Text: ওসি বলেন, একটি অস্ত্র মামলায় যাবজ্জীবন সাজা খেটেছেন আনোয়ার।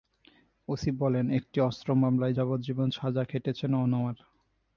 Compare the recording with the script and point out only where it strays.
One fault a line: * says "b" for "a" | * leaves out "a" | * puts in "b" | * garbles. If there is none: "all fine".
all fine